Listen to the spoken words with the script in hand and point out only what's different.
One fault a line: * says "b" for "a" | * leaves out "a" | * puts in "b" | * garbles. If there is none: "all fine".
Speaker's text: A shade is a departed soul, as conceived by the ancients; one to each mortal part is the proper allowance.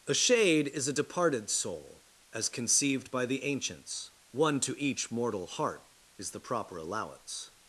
* says "heart" for "part"